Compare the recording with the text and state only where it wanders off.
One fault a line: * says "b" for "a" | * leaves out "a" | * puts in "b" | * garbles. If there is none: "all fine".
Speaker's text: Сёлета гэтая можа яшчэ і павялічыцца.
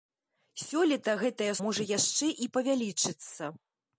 all fine